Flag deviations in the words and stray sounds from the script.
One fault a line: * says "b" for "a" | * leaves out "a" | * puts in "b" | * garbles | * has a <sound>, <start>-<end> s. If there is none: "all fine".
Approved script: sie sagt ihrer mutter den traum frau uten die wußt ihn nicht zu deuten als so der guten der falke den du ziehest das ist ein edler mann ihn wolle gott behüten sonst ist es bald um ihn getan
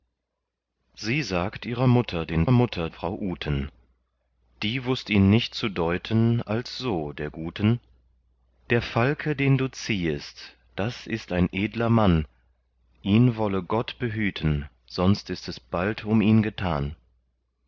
* says "mutter" for "traum"